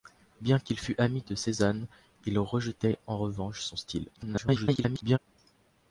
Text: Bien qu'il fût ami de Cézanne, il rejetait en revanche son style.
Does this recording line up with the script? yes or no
no